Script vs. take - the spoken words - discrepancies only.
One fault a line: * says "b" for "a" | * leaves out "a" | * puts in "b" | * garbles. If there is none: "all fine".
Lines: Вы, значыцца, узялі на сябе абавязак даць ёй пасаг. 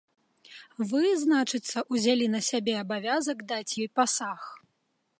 all fine